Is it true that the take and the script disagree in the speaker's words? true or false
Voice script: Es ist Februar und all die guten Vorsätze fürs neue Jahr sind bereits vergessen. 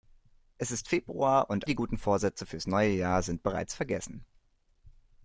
true